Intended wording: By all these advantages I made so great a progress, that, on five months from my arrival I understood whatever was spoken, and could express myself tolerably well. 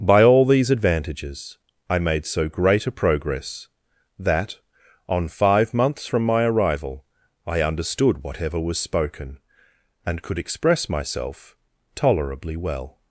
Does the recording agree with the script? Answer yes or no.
yes